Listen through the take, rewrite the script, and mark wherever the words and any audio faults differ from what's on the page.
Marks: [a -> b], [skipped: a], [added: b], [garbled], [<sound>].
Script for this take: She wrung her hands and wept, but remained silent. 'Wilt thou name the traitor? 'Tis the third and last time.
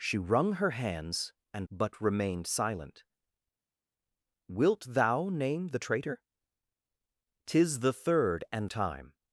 She wrung her hands and [skipped: wept,] but remained silent. 'Wilt thou name the traitor? 'Tis the third and [skipped: last] time.